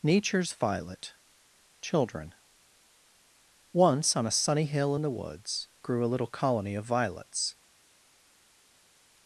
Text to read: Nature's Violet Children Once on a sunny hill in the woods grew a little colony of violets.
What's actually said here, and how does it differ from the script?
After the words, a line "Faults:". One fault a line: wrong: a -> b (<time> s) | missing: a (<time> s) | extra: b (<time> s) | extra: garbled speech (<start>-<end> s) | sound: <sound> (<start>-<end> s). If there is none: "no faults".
Nature's Violet Children Once on a sunny hill in the woods grew a little colony of violets.
Faults:
no faults